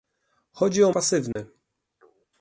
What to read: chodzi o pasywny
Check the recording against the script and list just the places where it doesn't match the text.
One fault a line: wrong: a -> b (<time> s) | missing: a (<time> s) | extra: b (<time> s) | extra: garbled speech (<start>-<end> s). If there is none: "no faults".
no faults